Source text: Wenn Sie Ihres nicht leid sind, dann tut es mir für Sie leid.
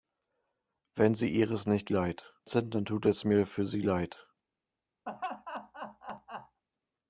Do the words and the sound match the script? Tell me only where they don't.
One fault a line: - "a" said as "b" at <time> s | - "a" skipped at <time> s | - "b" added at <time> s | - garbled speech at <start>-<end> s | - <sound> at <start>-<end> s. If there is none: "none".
- laugh at 5.1-6.6 s